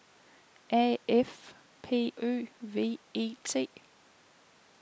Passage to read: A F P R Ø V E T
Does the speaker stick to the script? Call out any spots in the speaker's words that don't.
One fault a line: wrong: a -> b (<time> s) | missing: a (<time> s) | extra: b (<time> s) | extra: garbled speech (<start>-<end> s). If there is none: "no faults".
missing: R (2.1 s)